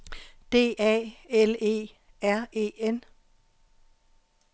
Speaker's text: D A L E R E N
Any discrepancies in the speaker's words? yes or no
no